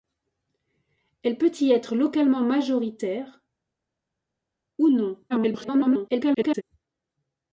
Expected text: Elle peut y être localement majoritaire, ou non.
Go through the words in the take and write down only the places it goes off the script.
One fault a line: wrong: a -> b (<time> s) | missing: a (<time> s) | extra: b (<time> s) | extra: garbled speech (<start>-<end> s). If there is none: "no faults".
extra: garbled speech (5.3-6.6 s)